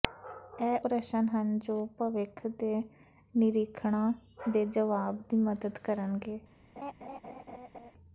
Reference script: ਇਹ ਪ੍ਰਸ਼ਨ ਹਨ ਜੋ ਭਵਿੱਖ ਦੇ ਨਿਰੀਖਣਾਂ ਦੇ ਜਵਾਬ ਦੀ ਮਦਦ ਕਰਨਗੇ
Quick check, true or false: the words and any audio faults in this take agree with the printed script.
false